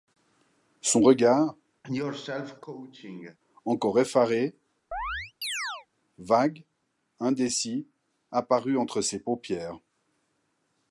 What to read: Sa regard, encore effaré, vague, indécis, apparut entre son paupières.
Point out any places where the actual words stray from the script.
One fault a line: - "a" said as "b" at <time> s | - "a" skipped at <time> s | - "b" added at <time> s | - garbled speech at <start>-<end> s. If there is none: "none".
- "Sa" said as "Son" at 0.8 s
- "son" said as "ses" at 9.0 s